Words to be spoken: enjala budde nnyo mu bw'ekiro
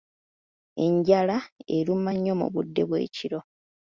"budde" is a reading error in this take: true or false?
true